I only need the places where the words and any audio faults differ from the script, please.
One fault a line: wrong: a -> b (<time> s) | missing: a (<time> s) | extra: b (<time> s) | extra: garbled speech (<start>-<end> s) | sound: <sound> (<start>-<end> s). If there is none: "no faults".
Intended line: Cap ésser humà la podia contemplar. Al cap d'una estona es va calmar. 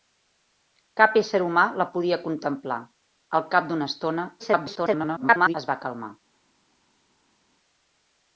extra: garbled speech (4.4-5.5 s)